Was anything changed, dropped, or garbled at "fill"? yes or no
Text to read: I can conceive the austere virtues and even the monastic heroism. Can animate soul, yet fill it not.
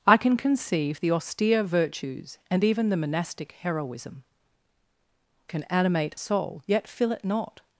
no